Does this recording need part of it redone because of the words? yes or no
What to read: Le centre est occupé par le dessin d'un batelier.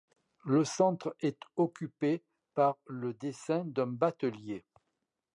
no